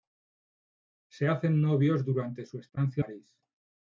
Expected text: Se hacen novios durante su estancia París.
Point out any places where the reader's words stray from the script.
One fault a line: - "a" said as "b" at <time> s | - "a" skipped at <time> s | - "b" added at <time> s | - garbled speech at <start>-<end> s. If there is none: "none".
none